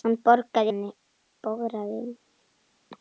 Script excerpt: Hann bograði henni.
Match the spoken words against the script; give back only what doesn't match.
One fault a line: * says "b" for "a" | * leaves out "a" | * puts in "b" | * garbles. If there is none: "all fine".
all fine